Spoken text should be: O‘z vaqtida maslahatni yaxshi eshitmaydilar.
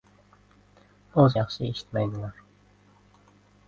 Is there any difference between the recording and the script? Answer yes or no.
yes